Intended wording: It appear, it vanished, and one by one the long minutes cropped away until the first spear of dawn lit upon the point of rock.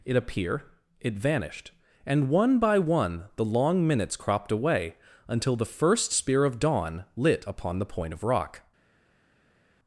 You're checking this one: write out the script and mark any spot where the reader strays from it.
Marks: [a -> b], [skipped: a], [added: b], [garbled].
It appear, it vanished, and one by one the long minutes cropped away until the first spear of dawn lit upon the point of rock.